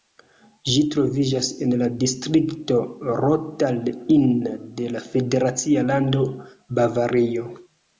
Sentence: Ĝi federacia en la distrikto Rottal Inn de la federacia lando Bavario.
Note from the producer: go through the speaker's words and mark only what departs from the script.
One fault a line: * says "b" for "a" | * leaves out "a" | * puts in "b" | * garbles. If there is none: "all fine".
* says "troviĝas" for "federacia"